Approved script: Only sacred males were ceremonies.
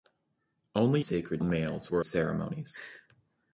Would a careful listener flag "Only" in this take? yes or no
no